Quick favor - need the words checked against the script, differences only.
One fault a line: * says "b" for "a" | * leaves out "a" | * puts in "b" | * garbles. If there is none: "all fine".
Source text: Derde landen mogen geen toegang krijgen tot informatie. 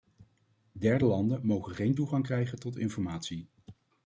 all fine